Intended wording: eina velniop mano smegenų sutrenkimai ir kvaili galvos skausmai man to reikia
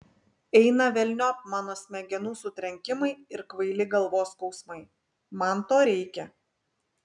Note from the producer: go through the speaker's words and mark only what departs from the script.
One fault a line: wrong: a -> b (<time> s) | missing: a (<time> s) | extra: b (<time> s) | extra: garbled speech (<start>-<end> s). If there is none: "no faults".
no faults